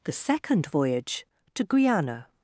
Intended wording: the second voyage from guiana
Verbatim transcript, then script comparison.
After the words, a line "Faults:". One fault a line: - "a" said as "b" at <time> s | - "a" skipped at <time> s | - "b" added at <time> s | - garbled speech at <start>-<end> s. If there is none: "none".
the second voyage to guiana
Faults:
- "from" said as "to" at 1.5 s